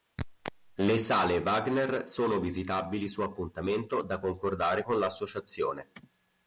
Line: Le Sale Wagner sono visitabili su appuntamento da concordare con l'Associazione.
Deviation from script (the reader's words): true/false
false